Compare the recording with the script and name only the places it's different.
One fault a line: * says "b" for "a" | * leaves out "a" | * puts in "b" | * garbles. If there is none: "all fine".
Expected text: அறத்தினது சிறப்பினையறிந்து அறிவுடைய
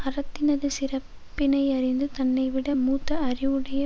* puts in "தன்னைவிட மூத்த"